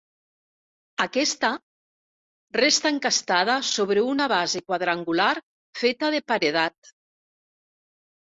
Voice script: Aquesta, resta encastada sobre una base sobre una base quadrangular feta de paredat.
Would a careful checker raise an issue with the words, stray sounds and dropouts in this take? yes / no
yes